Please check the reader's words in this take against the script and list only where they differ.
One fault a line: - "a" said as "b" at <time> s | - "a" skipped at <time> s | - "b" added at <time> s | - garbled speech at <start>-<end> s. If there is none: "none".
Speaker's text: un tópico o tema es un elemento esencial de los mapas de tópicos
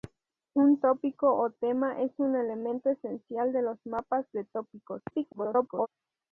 - garbled speech at 5.1-5.9 s